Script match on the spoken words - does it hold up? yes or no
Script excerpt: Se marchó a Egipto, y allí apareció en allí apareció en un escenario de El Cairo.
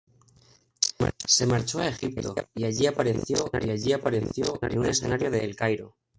yes